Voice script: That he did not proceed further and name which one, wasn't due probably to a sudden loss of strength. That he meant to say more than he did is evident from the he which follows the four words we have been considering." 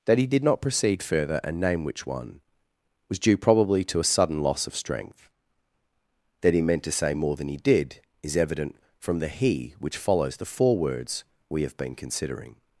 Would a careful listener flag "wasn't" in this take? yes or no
yes